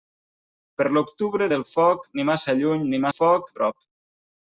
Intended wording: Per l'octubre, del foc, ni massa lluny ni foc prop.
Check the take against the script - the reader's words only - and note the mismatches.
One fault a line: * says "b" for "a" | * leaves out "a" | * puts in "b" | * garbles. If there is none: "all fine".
all fine